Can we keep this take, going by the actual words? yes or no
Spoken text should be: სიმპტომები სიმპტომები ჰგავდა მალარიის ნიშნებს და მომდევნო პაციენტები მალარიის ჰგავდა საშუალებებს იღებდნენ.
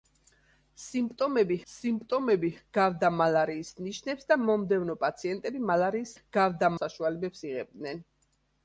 yes